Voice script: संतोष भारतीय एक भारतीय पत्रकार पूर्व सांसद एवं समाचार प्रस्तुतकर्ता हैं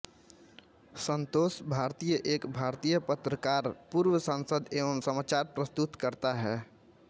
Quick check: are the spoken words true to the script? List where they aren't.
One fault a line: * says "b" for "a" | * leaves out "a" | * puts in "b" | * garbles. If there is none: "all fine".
all fine